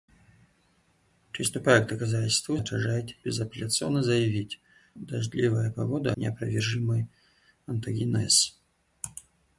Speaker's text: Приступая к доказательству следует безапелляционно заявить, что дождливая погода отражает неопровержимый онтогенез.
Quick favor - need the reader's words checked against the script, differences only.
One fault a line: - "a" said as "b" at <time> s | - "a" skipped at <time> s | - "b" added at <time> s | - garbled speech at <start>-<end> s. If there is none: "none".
- "следует" said as "отражает" at 2.6 s
- "что" skipped at 4.6 s
- "отражает" skipped at 6.1 s